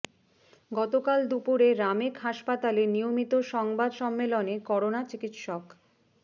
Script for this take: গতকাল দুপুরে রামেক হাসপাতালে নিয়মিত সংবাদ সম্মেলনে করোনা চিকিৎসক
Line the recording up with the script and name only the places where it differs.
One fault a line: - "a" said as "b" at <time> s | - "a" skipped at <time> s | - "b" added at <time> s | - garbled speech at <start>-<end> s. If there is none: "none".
none